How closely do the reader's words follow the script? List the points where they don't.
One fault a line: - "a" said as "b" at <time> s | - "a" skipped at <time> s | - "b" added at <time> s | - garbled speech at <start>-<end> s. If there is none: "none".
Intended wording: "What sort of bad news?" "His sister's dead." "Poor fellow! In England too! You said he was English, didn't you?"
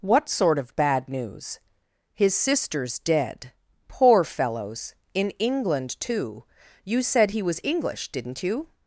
- "fellow" said as "fellows" at 4.2 s